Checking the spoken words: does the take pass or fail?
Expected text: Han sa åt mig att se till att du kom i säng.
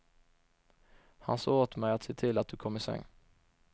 pass